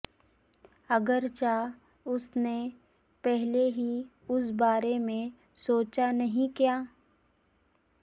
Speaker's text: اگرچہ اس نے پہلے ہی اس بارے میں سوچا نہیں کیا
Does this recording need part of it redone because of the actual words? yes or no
no